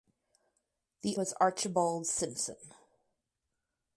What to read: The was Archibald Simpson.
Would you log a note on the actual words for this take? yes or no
no